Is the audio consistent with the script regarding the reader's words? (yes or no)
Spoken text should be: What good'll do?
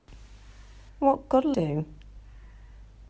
yes